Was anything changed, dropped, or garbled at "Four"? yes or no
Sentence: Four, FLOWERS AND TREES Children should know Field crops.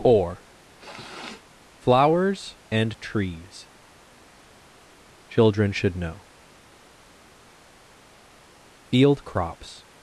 yes